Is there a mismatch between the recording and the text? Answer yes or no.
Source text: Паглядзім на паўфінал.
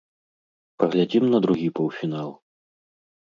yes